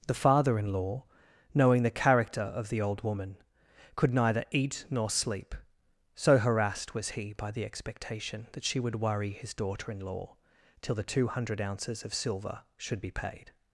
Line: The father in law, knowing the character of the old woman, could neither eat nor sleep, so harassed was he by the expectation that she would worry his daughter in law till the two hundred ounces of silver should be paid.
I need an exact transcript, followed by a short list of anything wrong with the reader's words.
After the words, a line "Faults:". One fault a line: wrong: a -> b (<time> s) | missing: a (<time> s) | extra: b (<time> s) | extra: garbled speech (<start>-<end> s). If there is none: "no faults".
The father in law, knowing the character of the old woman, could neither eat nor sleep, so harassed was he by the expectation that she would worry his daughter in law till the two hundred ounces of silver should be paid.
Faults:
no faults